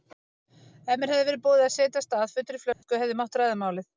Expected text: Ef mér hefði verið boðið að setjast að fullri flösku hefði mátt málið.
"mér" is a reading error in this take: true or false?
false